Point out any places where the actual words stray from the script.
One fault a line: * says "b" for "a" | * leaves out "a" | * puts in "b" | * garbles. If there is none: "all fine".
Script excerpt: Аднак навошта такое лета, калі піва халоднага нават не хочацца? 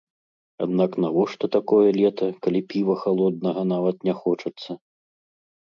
all fine